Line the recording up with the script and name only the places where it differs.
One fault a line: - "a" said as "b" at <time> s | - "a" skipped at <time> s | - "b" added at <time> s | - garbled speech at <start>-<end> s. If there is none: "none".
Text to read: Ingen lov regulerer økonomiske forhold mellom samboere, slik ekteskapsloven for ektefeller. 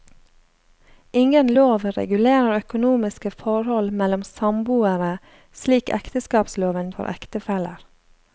none